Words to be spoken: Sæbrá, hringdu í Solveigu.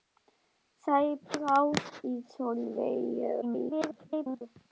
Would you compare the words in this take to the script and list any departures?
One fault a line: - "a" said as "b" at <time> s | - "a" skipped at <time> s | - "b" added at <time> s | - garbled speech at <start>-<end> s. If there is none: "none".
- "hringdu" skipped at 1.6 s
- garbled speech at 3.4-4.4 s